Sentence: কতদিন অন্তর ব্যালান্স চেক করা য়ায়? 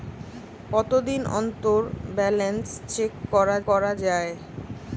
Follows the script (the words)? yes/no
no